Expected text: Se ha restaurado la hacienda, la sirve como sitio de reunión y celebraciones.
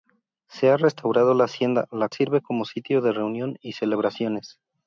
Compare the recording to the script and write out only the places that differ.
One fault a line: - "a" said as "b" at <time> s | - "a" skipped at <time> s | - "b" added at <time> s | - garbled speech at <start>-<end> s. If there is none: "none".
none